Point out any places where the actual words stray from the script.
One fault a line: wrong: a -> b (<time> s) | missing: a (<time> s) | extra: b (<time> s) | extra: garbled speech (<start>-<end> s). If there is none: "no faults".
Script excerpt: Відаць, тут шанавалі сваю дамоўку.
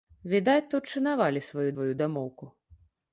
extra: сваю (1.7 s)